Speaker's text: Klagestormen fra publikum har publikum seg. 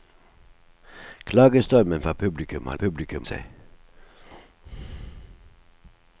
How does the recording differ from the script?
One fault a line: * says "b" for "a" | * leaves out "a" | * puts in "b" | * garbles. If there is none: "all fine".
all fine